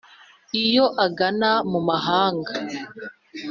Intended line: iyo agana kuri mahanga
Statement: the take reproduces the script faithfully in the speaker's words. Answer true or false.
false